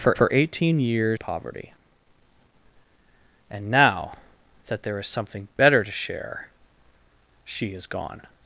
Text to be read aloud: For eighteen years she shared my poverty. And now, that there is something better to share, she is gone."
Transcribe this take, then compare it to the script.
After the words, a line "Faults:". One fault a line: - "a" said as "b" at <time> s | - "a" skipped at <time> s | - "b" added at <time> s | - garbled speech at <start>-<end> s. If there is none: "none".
For for eighteen years poverty. And now, that there is something better to share, she is gone."
Faults:
- "for" added at 0.2 s
- "she shared my" skipped at 1.2 s